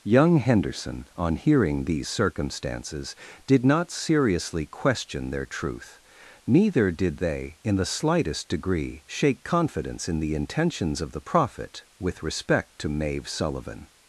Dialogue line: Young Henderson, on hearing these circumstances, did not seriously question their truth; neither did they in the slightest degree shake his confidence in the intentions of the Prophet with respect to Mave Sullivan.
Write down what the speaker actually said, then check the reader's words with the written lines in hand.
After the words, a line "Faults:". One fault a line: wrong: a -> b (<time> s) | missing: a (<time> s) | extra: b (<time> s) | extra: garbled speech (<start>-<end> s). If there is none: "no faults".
Young Henderson, on hearing these circumstances, did not seriously question their truth; neither did they in the slightest degree shake confidence in the intentions of the Prophet with respect to Mave Sullivan.
Faults:
missing: his (9.4 s)